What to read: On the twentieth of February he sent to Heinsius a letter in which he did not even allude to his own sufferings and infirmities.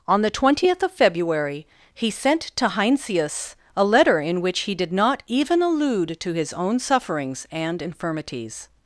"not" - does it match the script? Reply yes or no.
yes